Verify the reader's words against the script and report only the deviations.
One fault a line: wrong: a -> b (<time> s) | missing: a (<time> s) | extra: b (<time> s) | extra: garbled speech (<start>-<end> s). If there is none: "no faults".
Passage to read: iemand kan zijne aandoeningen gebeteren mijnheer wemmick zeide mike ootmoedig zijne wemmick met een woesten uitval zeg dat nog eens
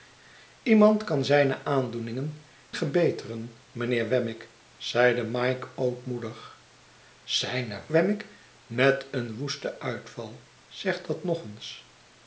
no faults